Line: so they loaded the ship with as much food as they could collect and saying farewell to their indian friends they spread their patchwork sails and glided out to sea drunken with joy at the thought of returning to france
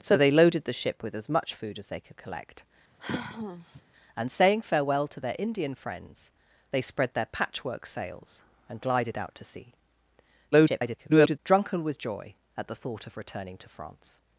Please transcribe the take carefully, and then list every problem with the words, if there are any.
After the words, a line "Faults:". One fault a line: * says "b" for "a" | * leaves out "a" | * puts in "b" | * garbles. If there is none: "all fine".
so they loaded the ship with as much food as they could collect and saying farewell to their indian friends they spread their patchwork sails and glided out to sea [garbled] drunken with joy at the thought of returning to france
Faults:
* garbles